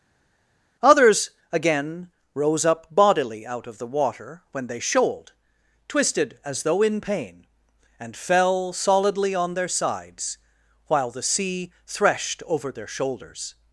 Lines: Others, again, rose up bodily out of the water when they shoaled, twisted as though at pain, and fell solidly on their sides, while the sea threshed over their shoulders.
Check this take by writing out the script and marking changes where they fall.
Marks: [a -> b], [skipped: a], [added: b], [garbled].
Others, again, rose up bodily out of the water when they shoaled, twisted as though [at -> in] pain, and fell solidly on their sides, while the sea threshed over their shoulders.